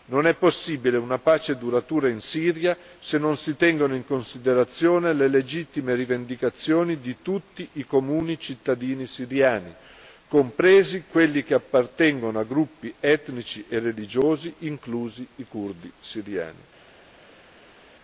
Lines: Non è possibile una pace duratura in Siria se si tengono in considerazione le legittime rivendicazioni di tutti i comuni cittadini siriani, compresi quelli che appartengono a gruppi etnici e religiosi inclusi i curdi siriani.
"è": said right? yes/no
yes